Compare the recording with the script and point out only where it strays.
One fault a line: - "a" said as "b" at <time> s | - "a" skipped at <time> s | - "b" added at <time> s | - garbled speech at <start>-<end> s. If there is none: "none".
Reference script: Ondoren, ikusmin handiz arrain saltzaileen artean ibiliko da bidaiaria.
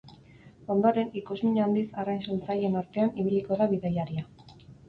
none